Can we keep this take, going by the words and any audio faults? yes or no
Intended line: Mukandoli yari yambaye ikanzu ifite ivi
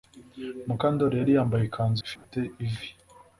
no